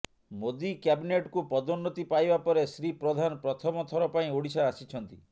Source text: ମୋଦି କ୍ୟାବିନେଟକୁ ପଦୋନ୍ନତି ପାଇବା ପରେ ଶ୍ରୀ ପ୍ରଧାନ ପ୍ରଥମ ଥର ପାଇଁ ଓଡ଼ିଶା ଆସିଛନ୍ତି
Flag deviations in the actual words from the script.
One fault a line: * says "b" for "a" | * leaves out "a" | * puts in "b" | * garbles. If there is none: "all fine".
all fine